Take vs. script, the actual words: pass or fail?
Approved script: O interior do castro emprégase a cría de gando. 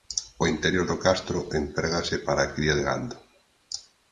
fail